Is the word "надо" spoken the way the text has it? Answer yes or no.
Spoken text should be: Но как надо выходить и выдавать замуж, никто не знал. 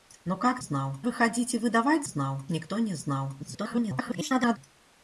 no